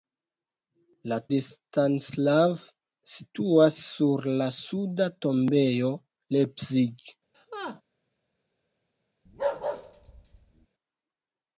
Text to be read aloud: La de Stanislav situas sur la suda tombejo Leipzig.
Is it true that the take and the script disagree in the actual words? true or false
false